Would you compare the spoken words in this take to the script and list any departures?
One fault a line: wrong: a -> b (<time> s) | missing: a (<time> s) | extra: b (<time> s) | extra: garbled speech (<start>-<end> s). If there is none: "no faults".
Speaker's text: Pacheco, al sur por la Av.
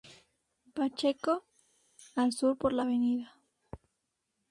no faults